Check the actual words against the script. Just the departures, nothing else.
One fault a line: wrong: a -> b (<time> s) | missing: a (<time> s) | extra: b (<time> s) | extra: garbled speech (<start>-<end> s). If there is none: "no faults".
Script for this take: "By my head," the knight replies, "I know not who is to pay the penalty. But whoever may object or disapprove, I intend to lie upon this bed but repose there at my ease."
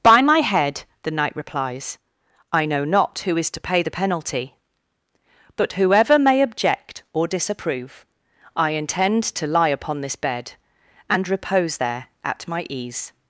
wrong: but -> and (11.1 s)